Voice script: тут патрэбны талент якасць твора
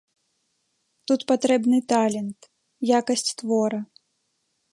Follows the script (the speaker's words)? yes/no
yes